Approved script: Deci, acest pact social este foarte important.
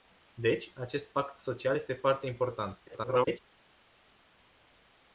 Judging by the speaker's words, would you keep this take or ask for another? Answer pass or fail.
fail